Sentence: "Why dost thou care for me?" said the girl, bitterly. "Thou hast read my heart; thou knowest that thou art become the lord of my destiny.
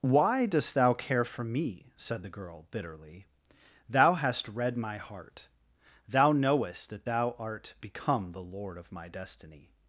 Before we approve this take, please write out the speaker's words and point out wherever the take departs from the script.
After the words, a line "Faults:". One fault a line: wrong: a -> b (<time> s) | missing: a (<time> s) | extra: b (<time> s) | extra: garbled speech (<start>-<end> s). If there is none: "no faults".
"Why dost thou care for me?" said the girl, bitterly. "Thou hast read my heart; thou knowest that thou art become the lord of my destiny.
Faults:
no faults